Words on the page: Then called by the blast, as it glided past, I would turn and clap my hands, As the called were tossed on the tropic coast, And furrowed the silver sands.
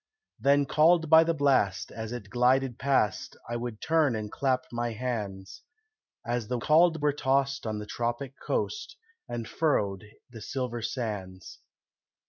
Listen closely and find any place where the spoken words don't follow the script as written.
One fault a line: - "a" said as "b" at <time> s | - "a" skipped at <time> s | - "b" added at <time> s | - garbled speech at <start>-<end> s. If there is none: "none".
none